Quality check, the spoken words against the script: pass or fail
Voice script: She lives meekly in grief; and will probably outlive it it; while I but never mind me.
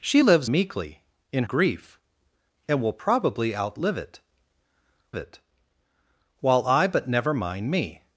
pass